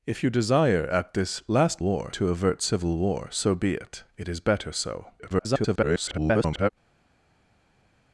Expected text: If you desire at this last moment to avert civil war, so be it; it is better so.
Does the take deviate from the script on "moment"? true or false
true